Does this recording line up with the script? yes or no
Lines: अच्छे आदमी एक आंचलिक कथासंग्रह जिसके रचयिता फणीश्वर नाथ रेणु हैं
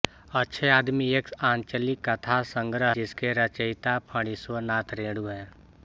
yes